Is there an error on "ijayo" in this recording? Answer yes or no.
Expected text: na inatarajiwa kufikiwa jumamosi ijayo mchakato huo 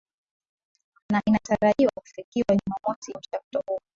yes